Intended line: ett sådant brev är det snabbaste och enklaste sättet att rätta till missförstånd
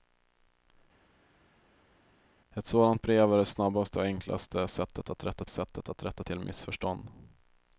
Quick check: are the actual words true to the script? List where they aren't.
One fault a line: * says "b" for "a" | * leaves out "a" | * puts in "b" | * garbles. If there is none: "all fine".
* puts in "sättet att rätta"